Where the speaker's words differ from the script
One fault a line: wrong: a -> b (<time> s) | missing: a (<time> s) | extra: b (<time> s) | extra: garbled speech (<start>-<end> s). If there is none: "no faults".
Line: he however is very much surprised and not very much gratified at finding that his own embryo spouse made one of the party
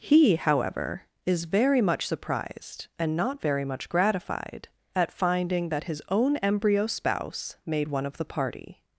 no faults